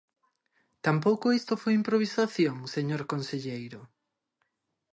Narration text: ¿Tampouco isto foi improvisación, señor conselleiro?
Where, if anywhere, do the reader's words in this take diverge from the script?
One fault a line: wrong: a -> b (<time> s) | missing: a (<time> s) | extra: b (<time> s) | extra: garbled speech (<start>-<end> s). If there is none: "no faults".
no faults